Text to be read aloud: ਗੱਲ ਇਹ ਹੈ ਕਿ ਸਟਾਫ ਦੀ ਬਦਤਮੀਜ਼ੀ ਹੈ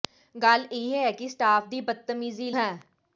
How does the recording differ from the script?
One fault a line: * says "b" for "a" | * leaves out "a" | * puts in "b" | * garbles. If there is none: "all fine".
all fine